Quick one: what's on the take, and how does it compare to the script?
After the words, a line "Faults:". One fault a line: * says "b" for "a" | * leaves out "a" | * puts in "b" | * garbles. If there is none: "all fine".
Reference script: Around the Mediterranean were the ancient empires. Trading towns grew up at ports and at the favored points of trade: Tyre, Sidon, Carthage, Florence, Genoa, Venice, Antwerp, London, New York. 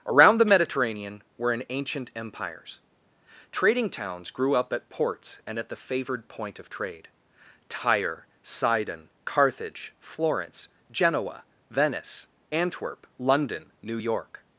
Around the Mediterranean were an ancient empires. Trading towns grew up at ports and at the favored point of trade: Tyre, Sidon, Carthage, Florence, Genoa, Venice, Antwerp, London, New York.
Faults:
* says "an" for "the"
* says "point" for "points"